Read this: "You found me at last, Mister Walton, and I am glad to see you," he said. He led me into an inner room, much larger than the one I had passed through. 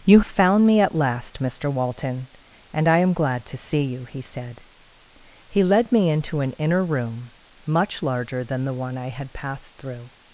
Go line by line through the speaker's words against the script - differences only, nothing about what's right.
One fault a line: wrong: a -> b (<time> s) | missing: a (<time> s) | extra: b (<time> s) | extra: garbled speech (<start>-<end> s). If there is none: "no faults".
no faults